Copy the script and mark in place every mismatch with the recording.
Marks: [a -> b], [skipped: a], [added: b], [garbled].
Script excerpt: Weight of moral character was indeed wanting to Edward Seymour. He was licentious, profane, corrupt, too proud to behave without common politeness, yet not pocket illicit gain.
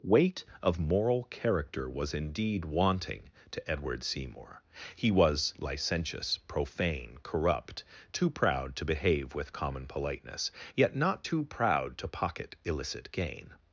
Weight of moral character was indeed wanting to Edward Seymour. He was licentious, profane, corrupt, too proud to behave [without -> with] common politeness, yet not [added: too proud to] pocket illicit gain.